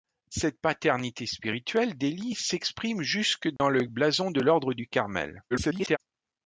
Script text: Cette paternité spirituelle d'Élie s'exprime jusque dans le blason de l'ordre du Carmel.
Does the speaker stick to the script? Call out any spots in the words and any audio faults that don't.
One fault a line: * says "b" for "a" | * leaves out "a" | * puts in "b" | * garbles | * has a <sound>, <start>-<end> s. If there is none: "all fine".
* has a dropout, 3.6-3.6 s
* garbles